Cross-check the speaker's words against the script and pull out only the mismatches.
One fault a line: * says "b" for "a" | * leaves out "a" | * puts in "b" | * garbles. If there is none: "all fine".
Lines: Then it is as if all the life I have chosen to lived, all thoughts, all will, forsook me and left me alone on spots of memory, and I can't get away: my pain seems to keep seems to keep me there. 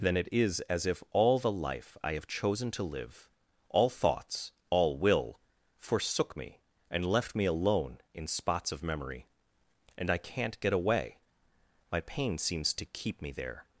* says "live" for "lived"
* says "in" for "on"
* leaves out "seems to keep"